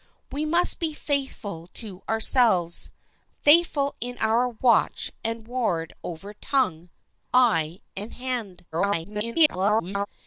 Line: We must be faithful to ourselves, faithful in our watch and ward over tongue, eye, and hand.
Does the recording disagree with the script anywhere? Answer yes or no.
yes